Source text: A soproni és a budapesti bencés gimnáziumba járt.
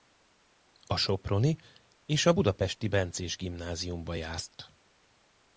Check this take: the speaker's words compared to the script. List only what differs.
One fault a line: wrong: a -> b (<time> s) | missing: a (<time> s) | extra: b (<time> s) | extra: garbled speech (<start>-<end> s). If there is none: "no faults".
no faults